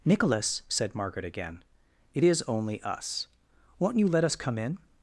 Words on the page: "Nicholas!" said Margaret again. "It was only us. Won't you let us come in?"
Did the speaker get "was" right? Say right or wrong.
wrong